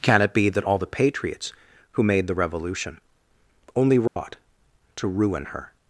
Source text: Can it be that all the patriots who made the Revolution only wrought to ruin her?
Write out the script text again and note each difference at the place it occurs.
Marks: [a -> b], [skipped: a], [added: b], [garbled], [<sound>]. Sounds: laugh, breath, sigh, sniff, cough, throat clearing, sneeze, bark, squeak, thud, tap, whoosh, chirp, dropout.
Can it be that all the patriots who made the Revolution only wrought [dropout] to ruin her?